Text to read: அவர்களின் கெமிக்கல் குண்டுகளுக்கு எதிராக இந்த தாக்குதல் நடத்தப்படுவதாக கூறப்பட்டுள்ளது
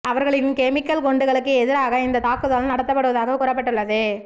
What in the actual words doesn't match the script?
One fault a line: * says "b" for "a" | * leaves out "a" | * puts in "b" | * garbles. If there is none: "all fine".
all fine